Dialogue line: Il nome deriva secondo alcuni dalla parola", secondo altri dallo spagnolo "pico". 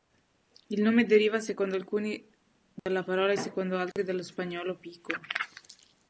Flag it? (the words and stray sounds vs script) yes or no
yes